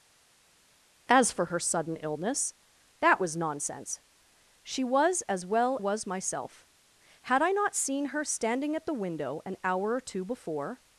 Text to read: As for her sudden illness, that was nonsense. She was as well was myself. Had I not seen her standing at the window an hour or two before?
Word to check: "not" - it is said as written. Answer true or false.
true